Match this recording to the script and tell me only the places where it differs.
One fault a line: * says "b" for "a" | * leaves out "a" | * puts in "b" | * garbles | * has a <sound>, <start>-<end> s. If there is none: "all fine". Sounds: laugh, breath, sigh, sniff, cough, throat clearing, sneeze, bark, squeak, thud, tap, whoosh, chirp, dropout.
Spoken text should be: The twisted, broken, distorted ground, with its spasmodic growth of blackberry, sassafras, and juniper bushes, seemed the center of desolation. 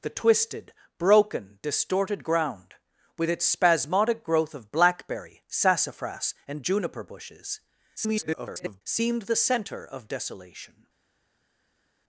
* garbles